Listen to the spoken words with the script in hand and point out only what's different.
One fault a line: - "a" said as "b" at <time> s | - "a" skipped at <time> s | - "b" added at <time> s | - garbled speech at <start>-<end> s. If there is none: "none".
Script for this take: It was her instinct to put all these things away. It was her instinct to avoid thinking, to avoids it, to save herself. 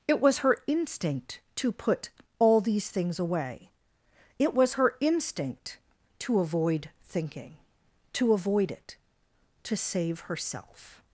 - "avoids" said as "avoid" at 8.3 s